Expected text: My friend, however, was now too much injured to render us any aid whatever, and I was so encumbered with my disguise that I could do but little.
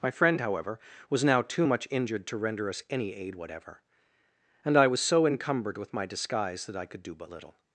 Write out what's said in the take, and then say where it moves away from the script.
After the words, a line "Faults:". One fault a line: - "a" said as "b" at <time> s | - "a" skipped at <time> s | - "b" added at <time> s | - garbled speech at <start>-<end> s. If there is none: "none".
My friend, however, was now too much injured to render us any aid whatever, and I was so encumbered with my disguise that I could do but little.
Faults:
none